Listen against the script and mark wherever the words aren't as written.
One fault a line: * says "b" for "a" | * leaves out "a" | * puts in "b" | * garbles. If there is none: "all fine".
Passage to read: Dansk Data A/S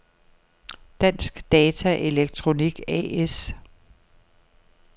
* puts in "Elektronik"